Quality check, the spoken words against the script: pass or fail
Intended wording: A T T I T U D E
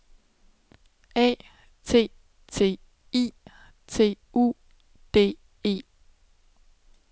pass